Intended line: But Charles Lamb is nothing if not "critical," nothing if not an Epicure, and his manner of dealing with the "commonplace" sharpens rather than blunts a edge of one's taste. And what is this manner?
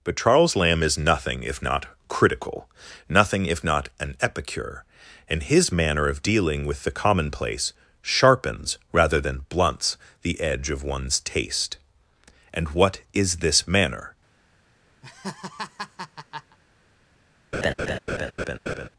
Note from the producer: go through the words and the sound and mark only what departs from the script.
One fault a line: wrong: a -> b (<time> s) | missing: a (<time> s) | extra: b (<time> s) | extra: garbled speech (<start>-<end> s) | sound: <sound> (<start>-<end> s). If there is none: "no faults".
wrong: a -> the (10.2 s)
sound: laugh (15.0-16.6 s)
sound: laugh (17.5-18.9 s)